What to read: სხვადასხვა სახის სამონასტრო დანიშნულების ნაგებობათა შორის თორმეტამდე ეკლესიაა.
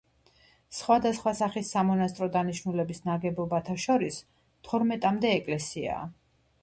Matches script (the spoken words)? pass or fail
pass